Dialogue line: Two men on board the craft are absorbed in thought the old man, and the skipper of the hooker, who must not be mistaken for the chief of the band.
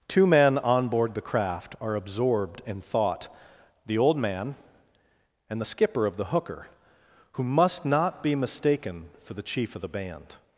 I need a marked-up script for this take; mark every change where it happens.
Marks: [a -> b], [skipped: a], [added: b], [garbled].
Two men on board the craft are absorbed in thought the old man, and the skipper of the hooker, who must not be mistaken for the chief of the band.